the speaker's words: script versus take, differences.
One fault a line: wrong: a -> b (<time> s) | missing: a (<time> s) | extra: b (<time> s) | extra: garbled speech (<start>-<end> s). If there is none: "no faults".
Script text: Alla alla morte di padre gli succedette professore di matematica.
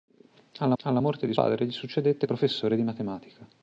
no faults